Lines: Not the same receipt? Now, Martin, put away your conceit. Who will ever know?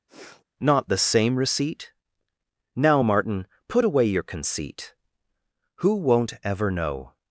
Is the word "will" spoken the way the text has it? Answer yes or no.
no